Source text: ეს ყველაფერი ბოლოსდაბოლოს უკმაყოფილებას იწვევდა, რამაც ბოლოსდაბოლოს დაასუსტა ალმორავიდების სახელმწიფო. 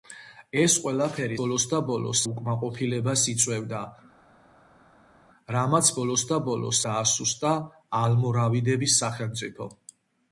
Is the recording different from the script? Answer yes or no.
no